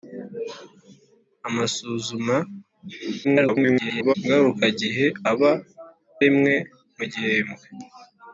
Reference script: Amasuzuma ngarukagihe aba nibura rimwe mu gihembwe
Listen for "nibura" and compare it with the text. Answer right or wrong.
wrong